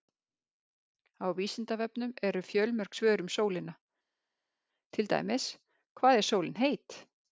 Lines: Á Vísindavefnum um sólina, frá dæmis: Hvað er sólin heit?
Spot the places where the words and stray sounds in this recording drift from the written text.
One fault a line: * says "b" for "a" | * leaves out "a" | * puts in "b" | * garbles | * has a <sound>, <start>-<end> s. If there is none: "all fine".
* puts in "eru fjölmörg svör"
* says "til" for "frá"